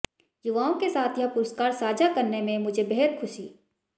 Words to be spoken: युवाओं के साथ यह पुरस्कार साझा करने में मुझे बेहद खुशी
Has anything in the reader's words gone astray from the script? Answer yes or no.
no